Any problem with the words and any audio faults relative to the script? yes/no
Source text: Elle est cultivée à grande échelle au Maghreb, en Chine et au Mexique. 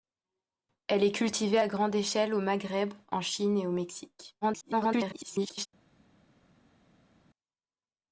yes